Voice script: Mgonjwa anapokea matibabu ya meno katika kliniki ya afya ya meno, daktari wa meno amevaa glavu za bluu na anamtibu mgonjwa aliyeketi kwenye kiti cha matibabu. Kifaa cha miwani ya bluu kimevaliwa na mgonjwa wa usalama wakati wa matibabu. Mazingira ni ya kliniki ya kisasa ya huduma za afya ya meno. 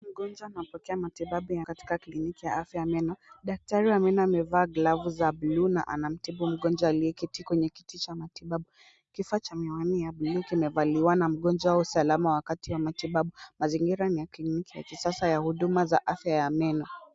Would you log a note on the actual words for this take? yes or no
yes